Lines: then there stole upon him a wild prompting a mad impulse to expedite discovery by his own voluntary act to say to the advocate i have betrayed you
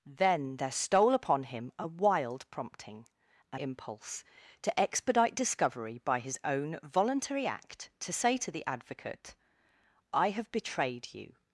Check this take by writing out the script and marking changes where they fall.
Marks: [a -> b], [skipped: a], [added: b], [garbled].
then there stole upon him a wild prompting a [skipped: mad] impulse to expedite discovery by his own voluntary act to say to the advocate i have betrayed you